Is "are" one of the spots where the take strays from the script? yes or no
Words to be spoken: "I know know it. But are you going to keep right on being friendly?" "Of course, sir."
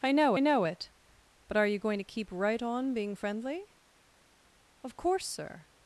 no